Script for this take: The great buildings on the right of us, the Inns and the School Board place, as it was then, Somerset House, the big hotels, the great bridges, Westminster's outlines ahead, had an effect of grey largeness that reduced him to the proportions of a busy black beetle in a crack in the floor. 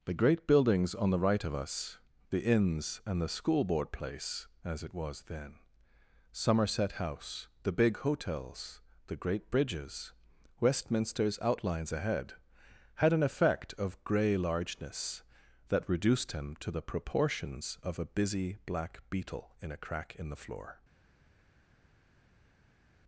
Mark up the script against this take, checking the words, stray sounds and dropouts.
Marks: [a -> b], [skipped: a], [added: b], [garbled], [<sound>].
The great buildings on the right of us, the Inns and the School Board place, as it was then, Somerset House, the big hotels, the great bridges, Westminster's outlines ahead, had an effect of grey largeness that reduced him to the proportions of a busy black beetle in a crack in the floor.